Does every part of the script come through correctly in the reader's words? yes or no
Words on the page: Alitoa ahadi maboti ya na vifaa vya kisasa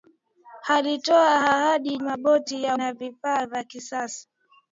yes